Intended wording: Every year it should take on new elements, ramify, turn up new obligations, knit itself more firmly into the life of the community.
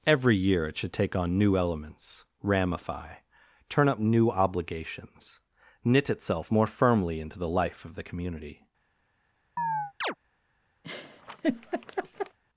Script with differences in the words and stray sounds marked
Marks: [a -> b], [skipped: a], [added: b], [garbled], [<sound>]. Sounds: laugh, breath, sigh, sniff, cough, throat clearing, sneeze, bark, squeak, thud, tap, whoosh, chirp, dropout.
Every year it should take on new elements, ramify, turn up new obligations, knit itself more firmly into the life of the community. [chirp] [laugh]